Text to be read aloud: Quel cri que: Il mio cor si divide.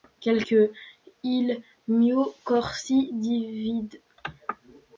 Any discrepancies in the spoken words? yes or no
yes